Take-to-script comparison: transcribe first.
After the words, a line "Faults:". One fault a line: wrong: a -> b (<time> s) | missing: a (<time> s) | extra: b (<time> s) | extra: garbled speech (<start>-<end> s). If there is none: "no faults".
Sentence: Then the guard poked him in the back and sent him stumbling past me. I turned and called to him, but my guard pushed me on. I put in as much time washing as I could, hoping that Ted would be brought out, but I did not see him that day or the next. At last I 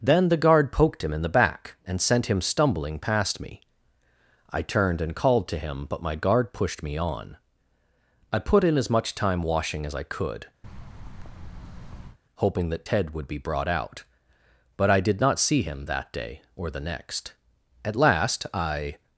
Then the guard poked him in the back and sent him stumbling past me. I turned and called to him, but my guard pushed me on. I put in as much time washing as I could, hoping that Ted would be brought out, but I did not see him that day or the next. At last I
Faults:
no faults